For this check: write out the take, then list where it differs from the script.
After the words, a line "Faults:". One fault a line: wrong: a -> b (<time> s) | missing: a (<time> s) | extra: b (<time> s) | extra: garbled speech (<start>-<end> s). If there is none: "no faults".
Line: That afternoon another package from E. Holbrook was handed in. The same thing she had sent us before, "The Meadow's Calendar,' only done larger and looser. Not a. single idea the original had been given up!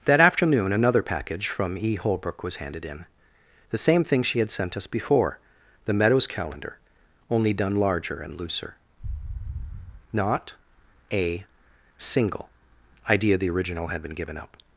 That afternoon another package from E. Holbrook was handed in. The same thing she had sent us before, "The Meadow's Calendar,' only done larger and looser. Not a. single idea the original had been given up!
Faults:
no faults